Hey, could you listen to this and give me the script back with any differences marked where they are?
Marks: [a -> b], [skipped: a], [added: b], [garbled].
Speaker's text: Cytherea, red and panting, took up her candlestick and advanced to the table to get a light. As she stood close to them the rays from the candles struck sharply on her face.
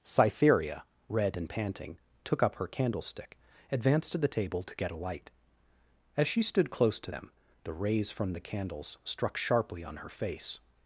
Cytherea, red and panting, took up her candlestick [skipped: and] advanced to the table to get a light. As she stood close to them the rays from the candles struck sharply on her face.